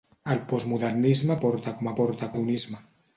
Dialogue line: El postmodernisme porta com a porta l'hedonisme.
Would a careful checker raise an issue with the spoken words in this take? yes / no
no